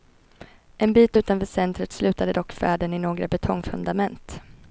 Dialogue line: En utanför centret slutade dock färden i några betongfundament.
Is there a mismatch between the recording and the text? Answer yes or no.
yes